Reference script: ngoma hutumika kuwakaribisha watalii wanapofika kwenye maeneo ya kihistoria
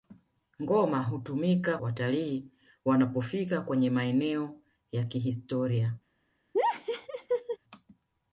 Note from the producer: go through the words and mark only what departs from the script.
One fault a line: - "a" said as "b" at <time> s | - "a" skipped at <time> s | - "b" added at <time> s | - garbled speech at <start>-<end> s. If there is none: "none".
- "kuwakaribisha" skipped at 1.8 s